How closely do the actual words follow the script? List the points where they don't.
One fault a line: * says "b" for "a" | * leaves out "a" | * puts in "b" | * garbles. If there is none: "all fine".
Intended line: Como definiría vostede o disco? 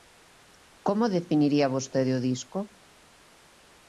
all fine